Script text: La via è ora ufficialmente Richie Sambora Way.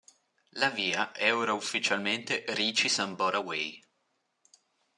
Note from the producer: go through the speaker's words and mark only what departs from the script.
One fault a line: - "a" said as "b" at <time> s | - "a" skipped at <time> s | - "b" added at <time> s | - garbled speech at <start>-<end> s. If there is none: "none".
none